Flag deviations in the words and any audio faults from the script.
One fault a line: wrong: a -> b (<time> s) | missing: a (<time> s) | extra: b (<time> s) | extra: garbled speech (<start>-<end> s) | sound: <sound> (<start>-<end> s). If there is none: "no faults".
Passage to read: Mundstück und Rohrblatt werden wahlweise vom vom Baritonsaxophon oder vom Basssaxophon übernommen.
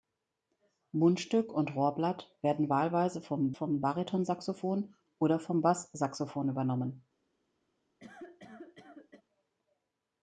sound: cough (8.0-9.2 s)